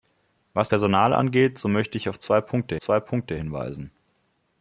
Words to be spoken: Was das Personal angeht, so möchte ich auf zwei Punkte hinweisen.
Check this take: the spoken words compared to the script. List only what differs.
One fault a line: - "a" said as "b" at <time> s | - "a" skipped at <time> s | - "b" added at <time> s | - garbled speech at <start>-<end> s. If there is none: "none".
- "das" skipped at 0.7 s
- "zwei Punkte" added at 2.8 s